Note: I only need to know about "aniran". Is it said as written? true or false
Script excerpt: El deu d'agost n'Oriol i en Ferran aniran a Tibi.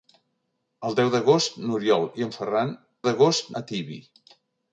false